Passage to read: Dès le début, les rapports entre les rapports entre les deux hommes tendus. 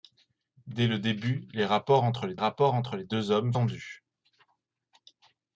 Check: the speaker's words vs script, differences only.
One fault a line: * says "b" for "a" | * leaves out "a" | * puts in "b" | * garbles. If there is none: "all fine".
all fine